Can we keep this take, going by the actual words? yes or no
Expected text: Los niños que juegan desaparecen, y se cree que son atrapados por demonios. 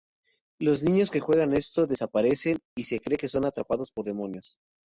no